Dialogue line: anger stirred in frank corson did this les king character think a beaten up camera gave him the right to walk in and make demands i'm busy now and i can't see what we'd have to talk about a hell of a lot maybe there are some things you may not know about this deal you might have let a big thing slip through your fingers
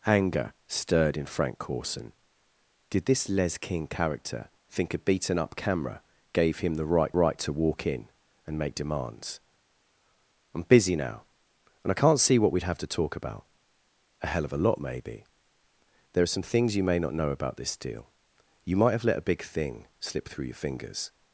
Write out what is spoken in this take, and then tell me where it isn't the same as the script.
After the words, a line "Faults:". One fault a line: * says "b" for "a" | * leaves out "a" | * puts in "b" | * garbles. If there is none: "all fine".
anger stirred in frank corson did this les king character think a beaten up camera gave him the right right to walk in and make demands i'm busy now and i can't see what we'd have to talk about a hell of a lot maybe there are some things you may not know about this deal you might have let a big thing slip through your fingers
Faults:
* puts in "right"